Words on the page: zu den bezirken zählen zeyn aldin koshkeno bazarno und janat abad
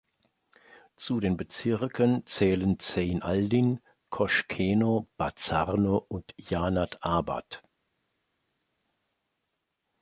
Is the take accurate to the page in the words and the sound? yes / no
yes